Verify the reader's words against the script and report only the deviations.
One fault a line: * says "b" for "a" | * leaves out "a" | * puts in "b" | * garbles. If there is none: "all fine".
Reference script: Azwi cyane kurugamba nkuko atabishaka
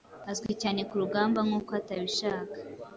all fine